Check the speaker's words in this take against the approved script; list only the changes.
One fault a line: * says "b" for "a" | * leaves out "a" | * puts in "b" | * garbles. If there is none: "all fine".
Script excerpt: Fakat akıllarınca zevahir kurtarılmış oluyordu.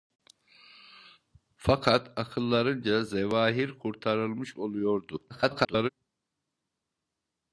* garbles